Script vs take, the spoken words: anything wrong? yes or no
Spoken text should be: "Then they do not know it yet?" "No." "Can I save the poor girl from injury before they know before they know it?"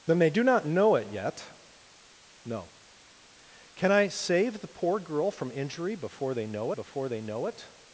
no